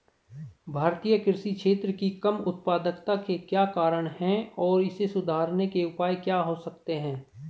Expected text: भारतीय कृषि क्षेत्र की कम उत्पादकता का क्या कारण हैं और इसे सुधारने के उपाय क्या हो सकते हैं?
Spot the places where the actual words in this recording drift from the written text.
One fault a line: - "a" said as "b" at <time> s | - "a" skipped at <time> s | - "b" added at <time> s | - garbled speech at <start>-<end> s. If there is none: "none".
- "का" said as "के" at 3.1 s